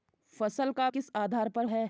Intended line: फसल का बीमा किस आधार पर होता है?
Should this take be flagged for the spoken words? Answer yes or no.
yes